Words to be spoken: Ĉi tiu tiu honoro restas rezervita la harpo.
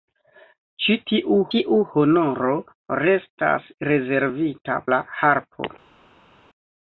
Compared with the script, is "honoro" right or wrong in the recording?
right